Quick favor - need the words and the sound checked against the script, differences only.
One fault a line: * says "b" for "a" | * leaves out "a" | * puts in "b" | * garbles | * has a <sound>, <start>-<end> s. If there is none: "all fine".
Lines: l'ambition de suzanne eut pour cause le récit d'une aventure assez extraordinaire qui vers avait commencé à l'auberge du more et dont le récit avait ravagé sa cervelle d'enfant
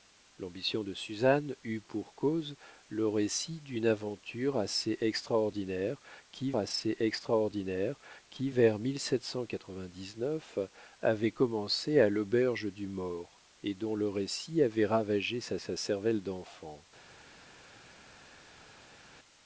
* puts in "assez extraordinaire qui"
* puts in "sa"